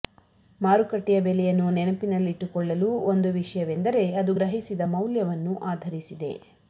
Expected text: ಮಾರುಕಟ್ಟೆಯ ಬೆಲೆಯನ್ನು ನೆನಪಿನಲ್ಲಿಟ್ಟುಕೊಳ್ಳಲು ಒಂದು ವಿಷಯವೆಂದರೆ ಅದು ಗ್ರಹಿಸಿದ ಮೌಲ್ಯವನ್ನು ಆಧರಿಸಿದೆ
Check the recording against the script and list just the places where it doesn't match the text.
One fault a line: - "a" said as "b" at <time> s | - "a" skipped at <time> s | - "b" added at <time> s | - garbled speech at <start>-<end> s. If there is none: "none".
none